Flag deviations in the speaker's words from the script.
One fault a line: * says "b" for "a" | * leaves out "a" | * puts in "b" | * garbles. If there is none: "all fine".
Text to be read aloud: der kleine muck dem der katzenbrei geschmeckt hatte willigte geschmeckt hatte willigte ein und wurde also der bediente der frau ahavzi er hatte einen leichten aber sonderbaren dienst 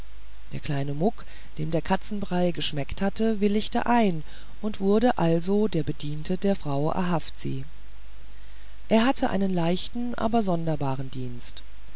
* leaves out "geschmeckt hatte willigte"